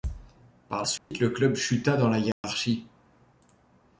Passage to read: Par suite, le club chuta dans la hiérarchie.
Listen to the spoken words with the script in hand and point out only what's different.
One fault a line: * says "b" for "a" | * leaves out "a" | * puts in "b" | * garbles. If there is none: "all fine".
all fine